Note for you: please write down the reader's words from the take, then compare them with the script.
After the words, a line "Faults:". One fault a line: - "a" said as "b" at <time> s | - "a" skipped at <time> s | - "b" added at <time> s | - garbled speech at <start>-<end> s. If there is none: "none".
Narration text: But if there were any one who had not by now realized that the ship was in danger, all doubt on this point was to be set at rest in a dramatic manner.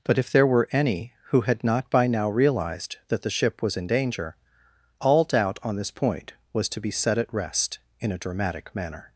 But if there were any who had not by now realized that the ship was in danger, all doubt on this point was to be set at rest in a dramatic manner.
Faults:
- "one" skipped at 1.1 s